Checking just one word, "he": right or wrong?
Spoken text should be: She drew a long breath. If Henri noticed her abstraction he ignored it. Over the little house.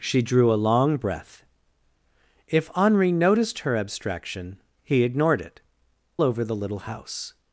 right